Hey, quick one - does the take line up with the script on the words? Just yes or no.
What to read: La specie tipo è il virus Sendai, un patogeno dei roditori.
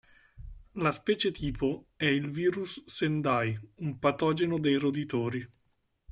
yes